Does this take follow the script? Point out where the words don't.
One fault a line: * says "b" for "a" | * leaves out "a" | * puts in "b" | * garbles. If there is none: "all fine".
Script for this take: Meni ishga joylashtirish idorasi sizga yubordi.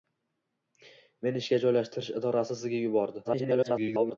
* garbles